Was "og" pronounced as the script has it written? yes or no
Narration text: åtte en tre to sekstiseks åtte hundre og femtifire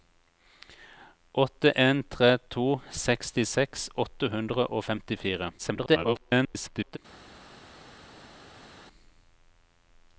yes